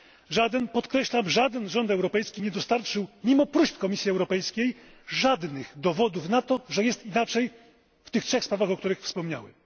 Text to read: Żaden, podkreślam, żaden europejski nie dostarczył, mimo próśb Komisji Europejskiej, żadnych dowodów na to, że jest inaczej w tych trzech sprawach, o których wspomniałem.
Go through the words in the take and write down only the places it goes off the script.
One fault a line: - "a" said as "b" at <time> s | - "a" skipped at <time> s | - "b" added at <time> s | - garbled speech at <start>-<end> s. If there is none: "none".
- "rząd" added at 1.7 s